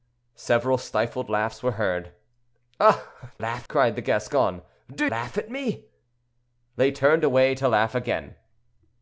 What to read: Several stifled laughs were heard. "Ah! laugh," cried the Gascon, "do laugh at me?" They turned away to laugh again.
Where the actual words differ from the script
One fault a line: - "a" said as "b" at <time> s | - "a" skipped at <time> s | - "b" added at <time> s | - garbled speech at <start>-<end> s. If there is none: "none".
none